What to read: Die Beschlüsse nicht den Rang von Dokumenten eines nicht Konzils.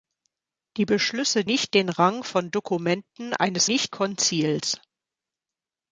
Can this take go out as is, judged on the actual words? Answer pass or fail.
pass